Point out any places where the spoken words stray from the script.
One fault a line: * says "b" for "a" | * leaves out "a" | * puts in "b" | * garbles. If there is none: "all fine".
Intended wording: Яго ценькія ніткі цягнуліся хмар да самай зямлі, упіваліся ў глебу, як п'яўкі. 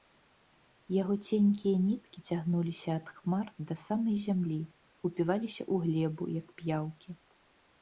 * puts in "ад"